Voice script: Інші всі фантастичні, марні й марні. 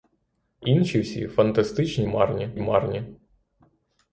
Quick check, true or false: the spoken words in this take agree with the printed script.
true